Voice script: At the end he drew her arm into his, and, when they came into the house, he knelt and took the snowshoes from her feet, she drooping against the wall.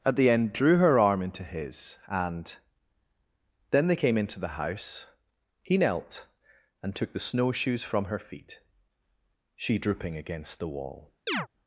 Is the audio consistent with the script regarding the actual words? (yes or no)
no